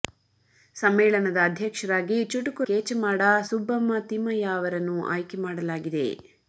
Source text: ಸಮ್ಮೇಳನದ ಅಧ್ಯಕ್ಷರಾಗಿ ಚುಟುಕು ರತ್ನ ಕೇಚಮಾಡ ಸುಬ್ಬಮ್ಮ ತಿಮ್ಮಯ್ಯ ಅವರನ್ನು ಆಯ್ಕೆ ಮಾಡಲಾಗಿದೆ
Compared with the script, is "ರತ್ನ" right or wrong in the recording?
wrong